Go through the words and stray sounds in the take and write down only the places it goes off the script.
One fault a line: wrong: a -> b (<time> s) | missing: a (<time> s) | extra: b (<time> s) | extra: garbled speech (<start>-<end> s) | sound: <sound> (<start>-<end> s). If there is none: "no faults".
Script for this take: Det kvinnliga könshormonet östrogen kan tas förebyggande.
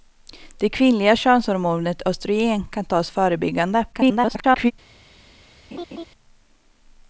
extra: garbled speech (3.9-4.7 s)
sound: laugh (5.7-6.1 s)